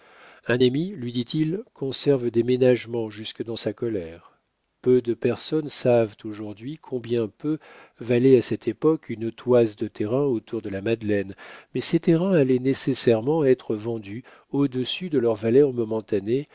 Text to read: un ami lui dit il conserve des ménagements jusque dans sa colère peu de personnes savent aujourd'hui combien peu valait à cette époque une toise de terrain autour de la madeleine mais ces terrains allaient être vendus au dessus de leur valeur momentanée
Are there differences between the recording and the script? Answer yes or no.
yes